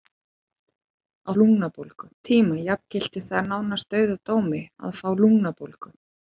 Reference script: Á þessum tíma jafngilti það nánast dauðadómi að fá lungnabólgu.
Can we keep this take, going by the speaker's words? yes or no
no